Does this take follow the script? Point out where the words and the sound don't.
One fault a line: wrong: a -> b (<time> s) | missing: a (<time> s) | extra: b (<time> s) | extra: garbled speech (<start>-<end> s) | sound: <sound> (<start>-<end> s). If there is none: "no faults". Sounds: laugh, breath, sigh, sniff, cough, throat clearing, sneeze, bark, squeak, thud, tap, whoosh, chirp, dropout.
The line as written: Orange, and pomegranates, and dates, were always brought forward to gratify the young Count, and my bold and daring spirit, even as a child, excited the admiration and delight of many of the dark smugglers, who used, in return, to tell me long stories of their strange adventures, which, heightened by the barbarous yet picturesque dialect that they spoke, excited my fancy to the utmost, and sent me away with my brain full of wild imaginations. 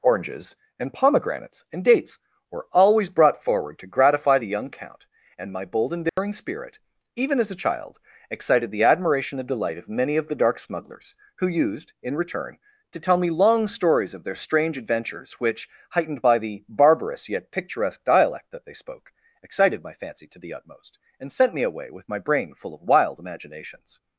wrong: Orange -> Oranges (0.0 s)
sound: dropout (6.1-6.2 s)